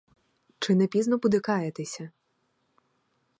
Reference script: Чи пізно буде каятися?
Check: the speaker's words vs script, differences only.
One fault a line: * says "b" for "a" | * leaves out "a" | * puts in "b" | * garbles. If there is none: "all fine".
* puts in "не"